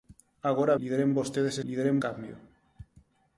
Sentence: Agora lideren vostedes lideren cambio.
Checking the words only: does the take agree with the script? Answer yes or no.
yes